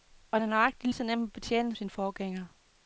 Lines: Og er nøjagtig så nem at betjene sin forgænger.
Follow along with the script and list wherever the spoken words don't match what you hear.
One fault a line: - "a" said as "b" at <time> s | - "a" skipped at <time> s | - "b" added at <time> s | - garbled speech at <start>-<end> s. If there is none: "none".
none